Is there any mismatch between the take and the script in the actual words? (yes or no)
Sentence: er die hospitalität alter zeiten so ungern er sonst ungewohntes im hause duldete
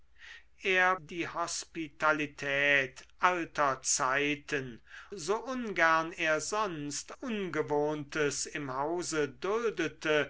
no